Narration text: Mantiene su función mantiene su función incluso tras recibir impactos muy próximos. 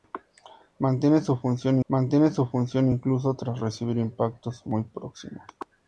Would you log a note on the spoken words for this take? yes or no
no